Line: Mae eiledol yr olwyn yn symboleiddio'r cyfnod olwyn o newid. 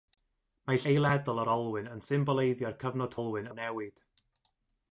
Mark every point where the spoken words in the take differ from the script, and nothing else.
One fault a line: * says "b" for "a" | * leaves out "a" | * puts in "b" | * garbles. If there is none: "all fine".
all fine